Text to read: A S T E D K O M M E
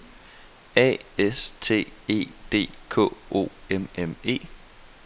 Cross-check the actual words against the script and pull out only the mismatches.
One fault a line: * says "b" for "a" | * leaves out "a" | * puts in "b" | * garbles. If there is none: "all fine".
all fine